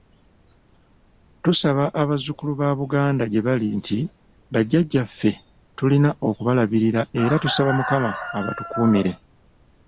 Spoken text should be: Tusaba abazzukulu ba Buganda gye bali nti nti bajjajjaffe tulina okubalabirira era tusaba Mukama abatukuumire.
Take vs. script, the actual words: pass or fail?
fail